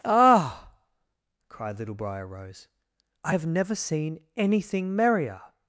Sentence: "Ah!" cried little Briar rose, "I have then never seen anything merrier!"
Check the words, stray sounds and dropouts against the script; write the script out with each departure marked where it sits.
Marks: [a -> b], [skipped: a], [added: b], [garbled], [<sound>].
"Ah!" cried little Briar rose, "I have [skipped: then] never seen anything merrier!"